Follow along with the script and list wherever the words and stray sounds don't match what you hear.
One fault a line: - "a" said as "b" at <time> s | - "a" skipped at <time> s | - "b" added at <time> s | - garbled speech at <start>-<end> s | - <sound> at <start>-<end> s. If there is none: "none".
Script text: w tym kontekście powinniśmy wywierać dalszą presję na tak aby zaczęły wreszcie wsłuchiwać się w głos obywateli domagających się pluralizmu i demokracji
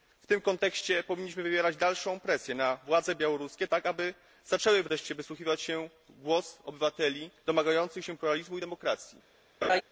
- "władze białoruskie" added at 2.9 s
- laugh at 9.6-9.8 s